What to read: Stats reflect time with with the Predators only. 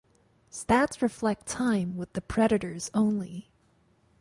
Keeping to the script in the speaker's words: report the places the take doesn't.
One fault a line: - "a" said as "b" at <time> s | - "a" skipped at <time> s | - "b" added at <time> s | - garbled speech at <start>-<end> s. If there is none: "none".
- "with" skipped at 2.1 s